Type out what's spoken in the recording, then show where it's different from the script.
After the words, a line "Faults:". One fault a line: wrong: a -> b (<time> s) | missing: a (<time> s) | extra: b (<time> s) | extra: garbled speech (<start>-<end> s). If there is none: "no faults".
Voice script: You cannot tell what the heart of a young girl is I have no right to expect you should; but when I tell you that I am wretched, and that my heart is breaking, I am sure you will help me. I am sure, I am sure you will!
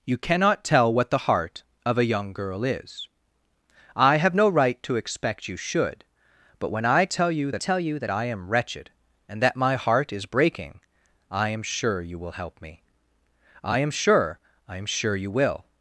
You cannot tell what the heart of a young girl is I have no right to expect you should; but when I tell you that tell you that I am wretched, and that my heart is breaking, I am sure you will help me. I am sure, I am sure you will!
Faults:
extra: tell you that (7.6 s)